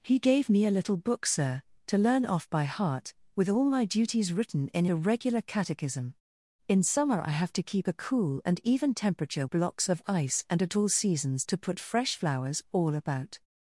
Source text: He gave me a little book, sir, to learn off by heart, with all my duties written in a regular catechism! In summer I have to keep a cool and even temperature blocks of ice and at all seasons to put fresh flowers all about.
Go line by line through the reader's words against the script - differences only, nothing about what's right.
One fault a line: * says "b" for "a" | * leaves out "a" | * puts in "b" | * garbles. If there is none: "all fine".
all fine